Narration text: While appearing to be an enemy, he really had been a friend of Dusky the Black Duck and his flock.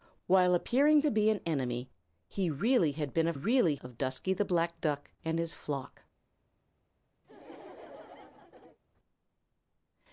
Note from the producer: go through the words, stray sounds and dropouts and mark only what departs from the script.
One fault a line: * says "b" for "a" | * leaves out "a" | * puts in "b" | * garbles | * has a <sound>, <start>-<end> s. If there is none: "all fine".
* says "really" for "friend"
* has a laugh, 7.2-8.8 s